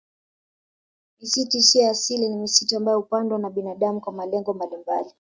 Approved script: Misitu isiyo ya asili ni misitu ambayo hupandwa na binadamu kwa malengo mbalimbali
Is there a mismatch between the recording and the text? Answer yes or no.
no